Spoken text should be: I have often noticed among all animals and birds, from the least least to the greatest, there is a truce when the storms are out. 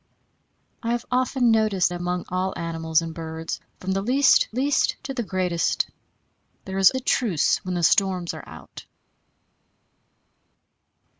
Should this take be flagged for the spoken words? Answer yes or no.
no